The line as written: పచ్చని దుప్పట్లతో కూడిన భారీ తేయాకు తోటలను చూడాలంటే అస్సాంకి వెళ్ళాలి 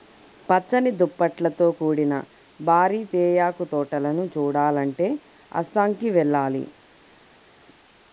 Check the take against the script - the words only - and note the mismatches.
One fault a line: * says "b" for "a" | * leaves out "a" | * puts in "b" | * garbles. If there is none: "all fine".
all fine